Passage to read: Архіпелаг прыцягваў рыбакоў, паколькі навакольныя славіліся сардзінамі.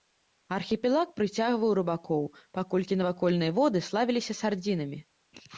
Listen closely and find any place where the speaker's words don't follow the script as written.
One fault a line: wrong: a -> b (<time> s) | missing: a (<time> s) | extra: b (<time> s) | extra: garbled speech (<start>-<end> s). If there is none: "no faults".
extra: воды (3.6 s)